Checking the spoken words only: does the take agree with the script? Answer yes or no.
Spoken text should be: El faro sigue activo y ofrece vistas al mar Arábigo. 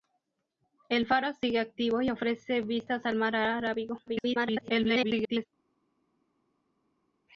no